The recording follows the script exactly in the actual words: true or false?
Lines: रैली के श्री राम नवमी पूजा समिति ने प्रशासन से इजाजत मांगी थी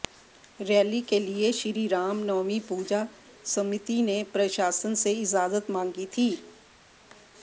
false